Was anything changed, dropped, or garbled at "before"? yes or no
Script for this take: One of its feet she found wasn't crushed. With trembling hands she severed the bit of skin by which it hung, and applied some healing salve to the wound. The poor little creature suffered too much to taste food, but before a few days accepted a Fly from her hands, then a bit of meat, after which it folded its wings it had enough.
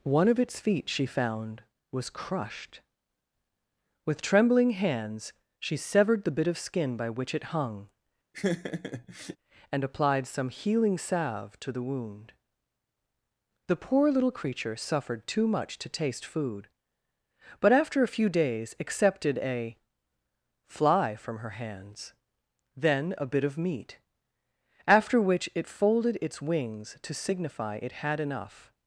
yes